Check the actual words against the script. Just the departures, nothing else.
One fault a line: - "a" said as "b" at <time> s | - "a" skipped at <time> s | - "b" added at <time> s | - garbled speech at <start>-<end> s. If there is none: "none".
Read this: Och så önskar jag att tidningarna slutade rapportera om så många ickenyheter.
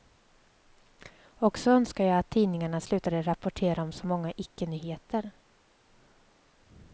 none